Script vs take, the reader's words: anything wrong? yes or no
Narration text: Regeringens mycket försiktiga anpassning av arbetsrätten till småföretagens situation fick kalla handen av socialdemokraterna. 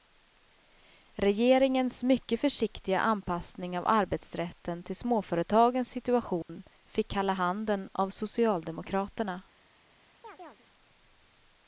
no